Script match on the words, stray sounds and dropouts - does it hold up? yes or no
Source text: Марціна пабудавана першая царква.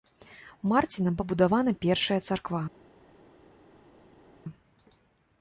yes